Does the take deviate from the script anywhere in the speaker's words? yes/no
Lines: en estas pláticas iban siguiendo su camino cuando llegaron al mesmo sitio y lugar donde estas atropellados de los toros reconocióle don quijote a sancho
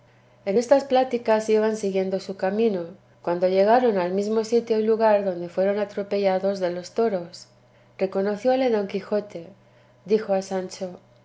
yes